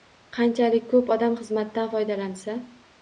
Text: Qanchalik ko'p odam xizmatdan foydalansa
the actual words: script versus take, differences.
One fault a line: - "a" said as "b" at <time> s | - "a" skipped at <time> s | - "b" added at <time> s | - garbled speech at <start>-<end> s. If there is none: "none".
none